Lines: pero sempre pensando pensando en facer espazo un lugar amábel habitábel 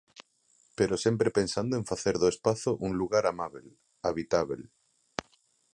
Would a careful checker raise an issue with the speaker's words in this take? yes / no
yes